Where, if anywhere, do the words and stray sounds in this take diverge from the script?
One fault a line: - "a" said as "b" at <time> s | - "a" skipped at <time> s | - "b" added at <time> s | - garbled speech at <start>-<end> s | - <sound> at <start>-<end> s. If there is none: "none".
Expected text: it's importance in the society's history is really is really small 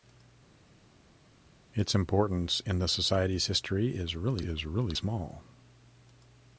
none